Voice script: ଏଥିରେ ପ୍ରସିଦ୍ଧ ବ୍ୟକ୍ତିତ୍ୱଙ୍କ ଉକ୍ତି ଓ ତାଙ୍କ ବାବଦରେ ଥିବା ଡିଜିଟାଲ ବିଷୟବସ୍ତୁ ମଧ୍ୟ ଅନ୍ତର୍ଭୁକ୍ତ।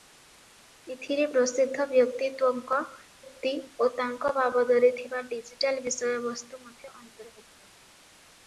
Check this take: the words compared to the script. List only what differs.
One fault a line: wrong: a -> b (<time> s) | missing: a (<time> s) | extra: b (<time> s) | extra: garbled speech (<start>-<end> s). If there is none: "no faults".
no faults